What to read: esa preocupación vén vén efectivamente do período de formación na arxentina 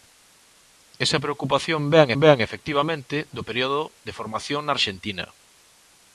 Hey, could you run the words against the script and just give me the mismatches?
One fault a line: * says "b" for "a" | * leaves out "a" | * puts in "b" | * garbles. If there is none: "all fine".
all fine